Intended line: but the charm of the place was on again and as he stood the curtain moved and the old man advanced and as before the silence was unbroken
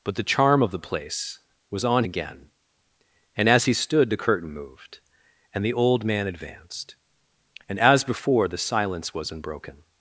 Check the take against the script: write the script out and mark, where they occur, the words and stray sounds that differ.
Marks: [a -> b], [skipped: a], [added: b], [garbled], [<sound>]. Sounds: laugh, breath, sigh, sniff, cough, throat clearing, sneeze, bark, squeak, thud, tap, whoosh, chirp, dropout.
but the charm of the place was on again and as he stood the curtain moved and the old man advanced and as before the silence was unbroken